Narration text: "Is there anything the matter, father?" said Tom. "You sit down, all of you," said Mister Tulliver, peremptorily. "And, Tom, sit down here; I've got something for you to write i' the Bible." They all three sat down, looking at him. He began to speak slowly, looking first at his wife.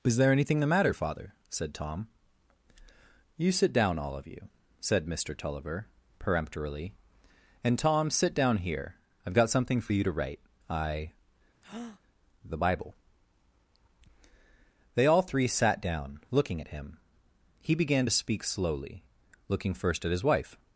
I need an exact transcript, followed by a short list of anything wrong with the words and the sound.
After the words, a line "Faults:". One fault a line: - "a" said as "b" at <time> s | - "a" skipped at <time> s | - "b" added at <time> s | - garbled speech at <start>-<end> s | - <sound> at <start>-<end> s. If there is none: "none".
"Is there anything the matter, father?" said Tom. "You sit down, all of you," said Mister Tulliver, peremptorily. "And, Tom, sit down here; I've got something for you to write i' the Bible." They all three sat down, looking at him. He began to speak slowly, looking first at his wife.
Faults:
- breath at 11.6-12.0 s